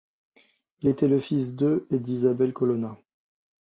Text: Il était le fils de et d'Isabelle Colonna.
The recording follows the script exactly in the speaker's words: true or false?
true